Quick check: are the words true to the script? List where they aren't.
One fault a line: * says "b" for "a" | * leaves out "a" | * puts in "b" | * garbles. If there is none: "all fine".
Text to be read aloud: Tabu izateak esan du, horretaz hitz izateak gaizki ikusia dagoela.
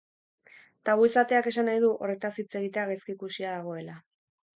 * puts in "nahi"
* says "egitea" for "izateak"